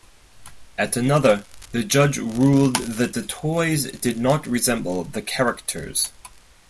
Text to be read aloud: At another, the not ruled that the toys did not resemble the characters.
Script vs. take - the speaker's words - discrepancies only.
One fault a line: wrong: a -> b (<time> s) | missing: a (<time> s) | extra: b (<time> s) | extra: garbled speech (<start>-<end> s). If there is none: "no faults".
wrong: not -> judge (1.8 s)